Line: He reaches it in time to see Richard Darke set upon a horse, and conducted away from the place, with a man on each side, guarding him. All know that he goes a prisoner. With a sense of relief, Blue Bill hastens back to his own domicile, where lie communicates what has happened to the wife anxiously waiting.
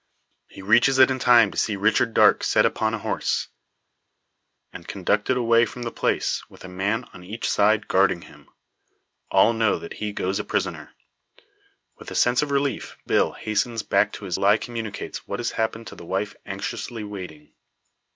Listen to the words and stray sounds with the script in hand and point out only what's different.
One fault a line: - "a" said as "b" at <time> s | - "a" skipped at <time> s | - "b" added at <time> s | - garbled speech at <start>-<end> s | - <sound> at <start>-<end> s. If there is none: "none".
- "Blue" skipped at 13.0 s
- "own domicile where" skipped at 14.4 s